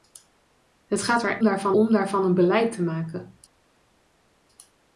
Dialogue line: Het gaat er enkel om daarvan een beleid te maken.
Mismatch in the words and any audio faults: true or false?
true